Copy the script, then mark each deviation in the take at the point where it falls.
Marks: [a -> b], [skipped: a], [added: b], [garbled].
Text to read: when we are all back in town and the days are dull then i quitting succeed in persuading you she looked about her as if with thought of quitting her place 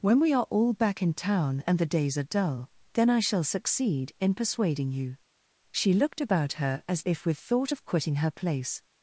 when we are all back in town and the days are dull then i [quitting -> shall] succeed in persuading you she looked about her as if with thought of quitting her place